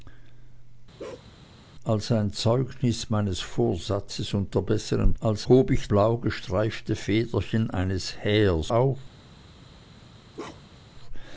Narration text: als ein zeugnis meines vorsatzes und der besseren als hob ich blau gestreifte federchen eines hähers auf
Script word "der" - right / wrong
right